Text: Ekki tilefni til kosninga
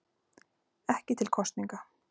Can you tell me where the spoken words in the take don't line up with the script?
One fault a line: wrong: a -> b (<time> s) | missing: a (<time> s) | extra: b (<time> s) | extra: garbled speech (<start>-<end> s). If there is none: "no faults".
missing: tilefni (1.2 s)